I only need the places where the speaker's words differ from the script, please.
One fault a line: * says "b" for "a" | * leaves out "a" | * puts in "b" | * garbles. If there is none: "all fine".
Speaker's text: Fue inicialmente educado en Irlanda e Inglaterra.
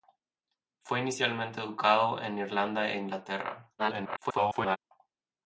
* garbles